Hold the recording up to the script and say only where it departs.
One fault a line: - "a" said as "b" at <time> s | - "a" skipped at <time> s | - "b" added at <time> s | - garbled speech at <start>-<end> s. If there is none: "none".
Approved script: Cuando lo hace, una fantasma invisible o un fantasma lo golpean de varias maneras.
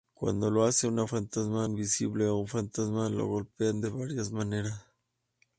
none